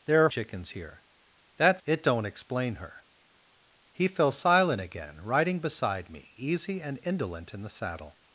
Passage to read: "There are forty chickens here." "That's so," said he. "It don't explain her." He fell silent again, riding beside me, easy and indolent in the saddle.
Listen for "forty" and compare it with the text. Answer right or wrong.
wrong